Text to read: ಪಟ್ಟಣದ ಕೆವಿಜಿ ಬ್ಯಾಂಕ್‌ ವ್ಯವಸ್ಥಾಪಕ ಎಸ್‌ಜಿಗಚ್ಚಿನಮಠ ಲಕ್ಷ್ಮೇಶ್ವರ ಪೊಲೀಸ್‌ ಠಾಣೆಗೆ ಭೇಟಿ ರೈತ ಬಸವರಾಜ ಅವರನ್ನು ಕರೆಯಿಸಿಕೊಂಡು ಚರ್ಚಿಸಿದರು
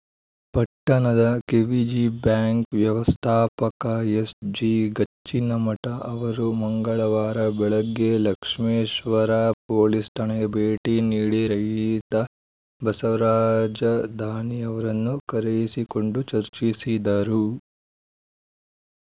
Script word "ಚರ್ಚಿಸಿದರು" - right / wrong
right